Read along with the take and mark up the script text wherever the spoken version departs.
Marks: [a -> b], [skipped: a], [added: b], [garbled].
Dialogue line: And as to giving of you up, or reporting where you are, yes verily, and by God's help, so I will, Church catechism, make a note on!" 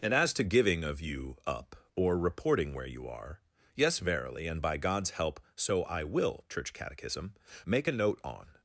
And as to giving of you up, or reporting where you are, yes verily, and by God's help, so I will, Church catechism, make a note on!"